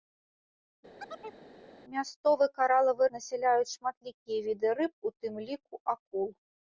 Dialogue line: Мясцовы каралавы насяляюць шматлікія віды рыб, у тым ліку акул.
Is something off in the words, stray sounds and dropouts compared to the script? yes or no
yes